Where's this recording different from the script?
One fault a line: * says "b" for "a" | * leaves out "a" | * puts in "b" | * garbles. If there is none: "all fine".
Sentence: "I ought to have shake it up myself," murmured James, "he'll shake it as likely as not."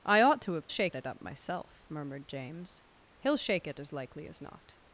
all fine